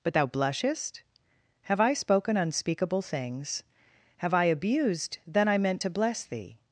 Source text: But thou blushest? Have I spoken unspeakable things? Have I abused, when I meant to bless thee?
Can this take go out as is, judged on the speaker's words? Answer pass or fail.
fail